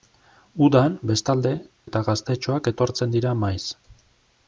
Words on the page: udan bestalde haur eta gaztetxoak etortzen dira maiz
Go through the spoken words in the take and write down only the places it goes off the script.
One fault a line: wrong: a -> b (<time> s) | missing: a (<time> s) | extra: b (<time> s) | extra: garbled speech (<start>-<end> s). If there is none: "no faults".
missing: haur (1.5 s)